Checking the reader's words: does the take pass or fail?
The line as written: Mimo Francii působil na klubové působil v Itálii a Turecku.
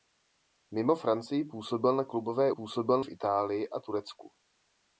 pass